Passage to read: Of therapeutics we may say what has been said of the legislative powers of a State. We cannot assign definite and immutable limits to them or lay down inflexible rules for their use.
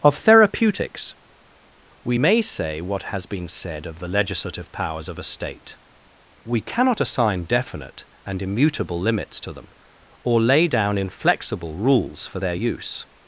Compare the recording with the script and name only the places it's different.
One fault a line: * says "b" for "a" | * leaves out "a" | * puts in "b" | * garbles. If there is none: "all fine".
all fine